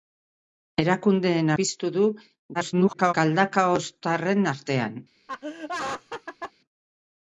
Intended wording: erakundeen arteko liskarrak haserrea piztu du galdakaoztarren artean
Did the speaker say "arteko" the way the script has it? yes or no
no